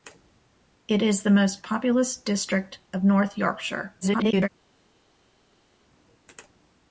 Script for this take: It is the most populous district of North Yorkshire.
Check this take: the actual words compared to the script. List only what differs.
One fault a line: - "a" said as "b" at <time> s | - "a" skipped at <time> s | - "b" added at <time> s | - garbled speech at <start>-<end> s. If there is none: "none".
- garbled speech at 4.0-4.5 s